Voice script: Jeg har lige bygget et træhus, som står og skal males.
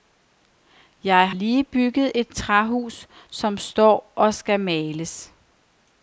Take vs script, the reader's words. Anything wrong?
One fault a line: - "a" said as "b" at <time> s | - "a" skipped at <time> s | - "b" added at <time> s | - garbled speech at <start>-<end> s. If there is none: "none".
- "har" skipped at 1.3 s